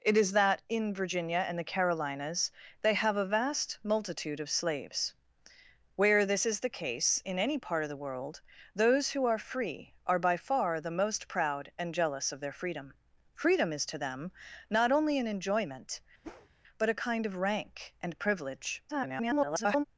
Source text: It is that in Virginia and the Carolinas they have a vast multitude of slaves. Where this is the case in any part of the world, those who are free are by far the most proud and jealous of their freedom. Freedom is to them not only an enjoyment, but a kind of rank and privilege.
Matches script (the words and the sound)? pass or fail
fail